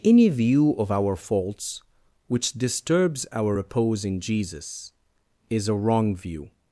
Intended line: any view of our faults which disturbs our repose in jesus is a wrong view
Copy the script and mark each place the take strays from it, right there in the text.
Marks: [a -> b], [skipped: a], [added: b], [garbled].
any view of our faults which disturbs our repose in jesus is a wrong view